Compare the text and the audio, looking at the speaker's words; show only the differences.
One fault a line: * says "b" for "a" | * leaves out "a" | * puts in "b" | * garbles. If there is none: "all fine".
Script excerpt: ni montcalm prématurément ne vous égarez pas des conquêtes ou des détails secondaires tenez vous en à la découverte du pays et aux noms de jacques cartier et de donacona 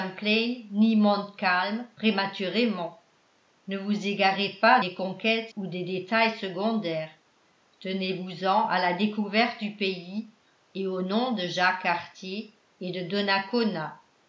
all fine